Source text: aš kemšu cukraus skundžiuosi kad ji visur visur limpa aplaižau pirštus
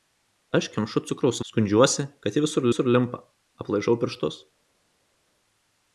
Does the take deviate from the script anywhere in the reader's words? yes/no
no